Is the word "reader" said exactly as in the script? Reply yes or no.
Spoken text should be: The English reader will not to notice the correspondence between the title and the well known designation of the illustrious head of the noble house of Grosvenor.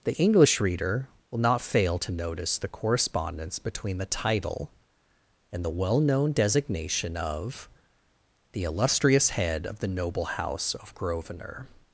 yes